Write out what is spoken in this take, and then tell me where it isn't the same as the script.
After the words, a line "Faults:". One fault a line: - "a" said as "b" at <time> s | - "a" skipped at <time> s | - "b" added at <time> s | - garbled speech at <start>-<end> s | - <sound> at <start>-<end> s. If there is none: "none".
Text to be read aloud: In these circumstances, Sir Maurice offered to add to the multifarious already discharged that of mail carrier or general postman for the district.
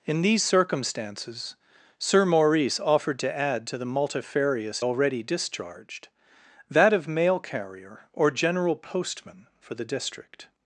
In these circumstances, Sir Maurice offered to add to the multifarious already discharged that of mail carrier or general postman for the district.
Faults:
none